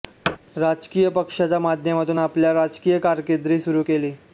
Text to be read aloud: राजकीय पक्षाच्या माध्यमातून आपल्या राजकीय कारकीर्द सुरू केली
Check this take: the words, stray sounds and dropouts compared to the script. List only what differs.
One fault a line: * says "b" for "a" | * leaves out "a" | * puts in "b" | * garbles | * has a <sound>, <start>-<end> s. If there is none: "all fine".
* has a thud, 0.2-0.4 s